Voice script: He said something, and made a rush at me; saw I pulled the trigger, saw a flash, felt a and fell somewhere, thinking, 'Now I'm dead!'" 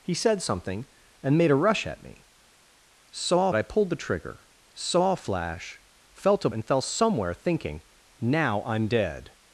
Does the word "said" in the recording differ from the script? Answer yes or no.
no